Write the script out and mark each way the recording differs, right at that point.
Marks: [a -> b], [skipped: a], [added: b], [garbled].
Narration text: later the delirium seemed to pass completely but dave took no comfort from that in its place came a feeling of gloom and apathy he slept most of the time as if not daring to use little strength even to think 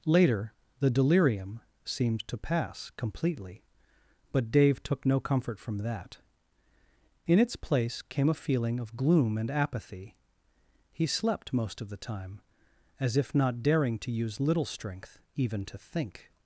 later the delirium seemed to pass completely but dave took no comfort from that in its place came a feeling of gloom and apathy he slept most of the time as if not daring to use little strength even to think